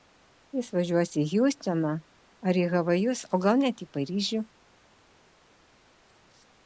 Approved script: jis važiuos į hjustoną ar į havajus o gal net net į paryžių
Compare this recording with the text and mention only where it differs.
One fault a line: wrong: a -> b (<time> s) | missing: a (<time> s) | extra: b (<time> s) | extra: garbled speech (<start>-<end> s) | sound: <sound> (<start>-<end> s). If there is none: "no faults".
missing: net (3.9 s)